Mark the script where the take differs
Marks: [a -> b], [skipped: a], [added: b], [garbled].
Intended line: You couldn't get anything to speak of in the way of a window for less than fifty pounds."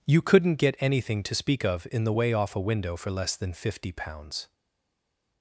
You couldn't get anything to speak of in the way [of -> off] a window for less than fifty pounds."